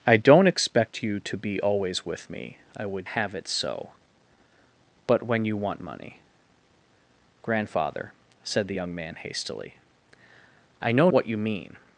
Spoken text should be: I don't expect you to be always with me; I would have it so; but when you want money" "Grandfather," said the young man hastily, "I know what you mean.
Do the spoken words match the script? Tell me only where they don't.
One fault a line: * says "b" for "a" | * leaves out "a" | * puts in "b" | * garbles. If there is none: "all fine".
all fine